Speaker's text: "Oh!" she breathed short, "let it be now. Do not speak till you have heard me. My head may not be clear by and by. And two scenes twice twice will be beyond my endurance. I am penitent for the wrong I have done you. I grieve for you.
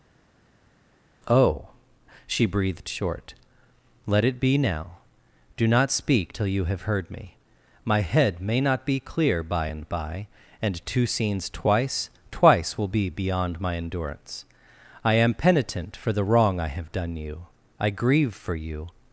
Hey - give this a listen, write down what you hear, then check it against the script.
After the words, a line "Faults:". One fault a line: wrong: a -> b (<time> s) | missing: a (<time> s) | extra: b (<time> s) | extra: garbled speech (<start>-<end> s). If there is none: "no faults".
"Oh!" she breathed short, "let it be now. Do not speak till you have heard me. My head may not be clear by and by. And two scenes twice twice will be beyond my endurance. I am penitent for the wrong I have done you. I grieve for you.
Faults:
no faults